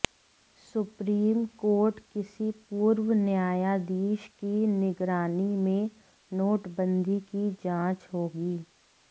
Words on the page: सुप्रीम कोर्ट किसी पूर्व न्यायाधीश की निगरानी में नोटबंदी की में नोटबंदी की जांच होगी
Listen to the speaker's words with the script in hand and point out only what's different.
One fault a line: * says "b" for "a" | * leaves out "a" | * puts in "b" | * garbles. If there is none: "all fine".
* leaves out "में नोटबंदी की"